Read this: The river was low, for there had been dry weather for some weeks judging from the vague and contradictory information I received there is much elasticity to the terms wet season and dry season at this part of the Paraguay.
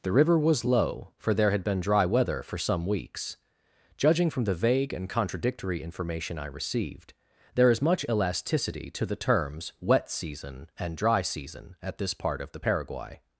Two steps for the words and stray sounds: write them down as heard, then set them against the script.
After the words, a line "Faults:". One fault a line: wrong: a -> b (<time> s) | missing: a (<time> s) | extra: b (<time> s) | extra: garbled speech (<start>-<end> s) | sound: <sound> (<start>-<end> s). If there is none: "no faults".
The river was low, for there had been dry weather for some weeks judging from the vague and contradictory information I received there is much elasticity to the terms wet season and dry season at this part of the Paraguay.
Faults:
no faults